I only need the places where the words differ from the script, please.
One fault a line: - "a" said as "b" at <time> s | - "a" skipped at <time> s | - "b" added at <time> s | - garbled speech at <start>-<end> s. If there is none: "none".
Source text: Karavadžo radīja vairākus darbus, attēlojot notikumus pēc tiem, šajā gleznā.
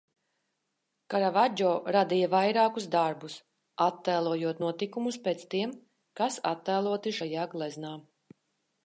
- "kas attēloti" added at 6.2 s